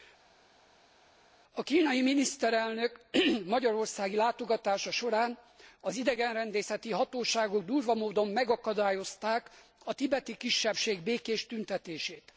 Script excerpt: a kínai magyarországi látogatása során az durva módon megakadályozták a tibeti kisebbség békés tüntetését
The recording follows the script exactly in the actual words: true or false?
false